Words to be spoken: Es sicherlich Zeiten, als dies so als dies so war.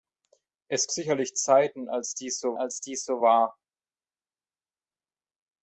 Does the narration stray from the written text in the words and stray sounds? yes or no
no